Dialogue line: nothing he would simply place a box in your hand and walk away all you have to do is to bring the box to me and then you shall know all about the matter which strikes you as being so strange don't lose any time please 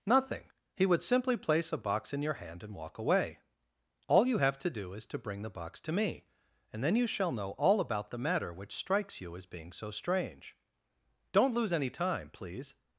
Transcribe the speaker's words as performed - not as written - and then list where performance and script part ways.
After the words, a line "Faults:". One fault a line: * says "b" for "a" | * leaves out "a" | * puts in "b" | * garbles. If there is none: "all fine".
nothing he would simply place a box in your hand and walk away all you have to do is to bring the box to me and then you shall know all about the matter which strikes you as being so strange don't lose any time please
Faults:
all fine